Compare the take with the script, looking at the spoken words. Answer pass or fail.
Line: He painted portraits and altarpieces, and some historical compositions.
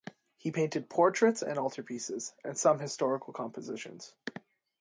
pass